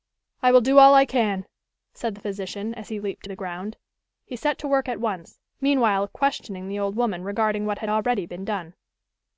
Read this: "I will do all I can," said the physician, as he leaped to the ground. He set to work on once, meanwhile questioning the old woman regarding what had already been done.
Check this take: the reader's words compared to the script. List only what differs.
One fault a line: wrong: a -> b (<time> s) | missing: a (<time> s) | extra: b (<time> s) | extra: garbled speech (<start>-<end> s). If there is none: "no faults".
wrong: on -> at (4.9 s)